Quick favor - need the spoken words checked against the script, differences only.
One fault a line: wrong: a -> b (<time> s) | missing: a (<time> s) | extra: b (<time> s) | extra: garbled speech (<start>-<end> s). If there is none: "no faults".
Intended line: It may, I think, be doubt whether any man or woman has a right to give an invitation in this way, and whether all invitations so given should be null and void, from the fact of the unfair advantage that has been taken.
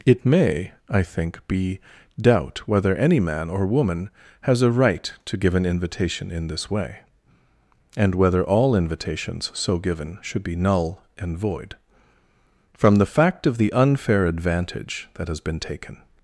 no faults